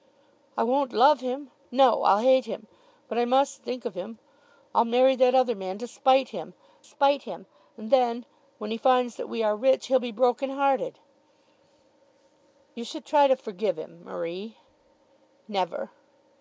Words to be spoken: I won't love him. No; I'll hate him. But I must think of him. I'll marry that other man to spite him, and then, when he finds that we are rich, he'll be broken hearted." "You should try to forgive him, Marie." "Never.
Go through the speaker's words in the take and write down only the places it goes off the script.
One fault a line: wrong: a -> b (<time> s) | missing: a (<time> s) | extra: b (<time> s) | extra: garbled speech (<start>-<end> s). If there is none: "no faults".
extra: spite him (6.8 s)